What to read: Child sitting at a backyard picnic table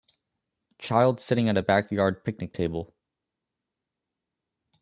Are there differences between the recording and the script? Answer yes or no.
no